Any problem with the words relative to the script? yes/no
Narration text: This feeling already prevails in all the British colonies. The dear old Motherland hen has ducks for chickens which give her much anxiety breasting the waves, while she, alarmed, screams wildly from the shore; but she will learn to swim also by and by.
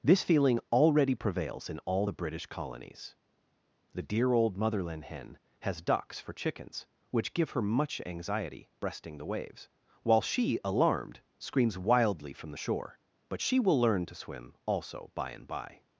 no